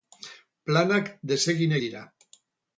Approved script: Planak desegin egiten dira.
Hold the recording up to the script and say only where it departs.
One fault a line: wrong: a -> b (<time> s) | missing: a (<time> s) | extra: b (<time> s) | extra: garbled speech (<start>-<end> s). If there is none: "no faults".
missing: egiten (1.8 s)